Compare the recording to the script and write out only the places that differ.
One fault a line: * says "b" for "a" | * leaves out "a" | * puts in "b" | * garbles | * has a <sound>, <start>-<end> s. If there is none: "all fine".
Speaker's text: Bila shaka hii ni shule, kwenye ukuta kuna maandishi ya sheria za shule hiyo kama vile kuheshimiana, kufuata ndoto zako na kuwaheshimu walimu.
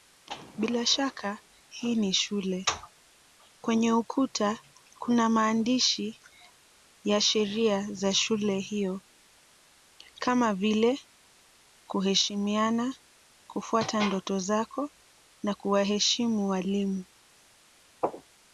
all fine